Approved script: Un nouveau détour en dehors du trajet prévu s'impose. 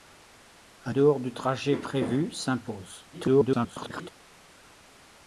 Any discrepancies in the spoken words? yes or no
yes